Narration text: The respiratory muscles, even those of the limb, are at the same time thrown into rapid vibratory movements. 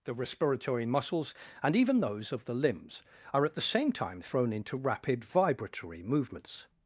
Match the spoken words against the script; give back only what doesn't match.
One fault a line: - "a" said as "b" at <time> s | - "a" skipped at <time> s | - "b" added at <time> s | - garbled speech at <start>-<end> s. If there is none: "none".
- "and" added at 1.6 s
- "limb" said as "limbs" at 2.5 s